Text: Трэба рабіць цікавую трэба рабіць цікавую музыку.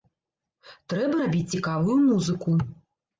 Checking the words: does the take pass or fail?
fail